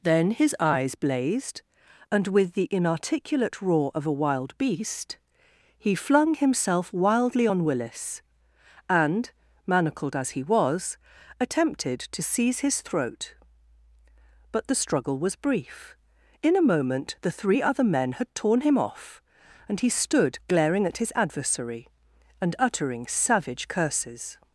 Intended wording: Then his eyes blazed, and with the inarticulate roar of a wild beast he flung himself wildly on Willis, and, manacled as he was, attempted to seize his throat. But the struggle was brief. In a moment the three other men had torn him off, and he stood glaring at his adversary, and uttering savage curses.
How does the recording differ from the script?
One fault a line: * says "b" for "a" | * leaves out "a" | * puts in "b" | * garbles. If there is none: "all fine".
all fine